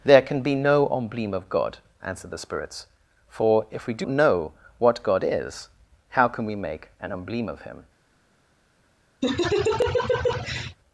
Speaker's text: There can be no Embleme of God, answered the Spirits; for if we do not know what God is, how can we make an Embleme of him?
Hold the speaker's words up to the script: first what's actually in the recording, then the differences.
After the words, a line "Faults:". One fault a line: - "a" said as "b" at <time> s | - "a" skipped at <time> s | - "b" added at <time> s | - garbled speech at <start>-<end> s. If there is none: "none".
There can be no Embleme of God, answered the Spirits; for if we do know what God is, how can we make an Embleme of him?
Faults:
- "not" skipped at 4.1 s